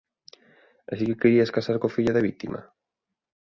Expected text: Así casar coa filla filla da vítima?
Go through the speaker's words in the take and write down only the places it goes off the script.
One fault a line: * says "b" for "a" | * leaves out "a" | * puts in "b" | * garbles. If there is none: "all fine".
* puts in "que querías"
* leaves out "filla"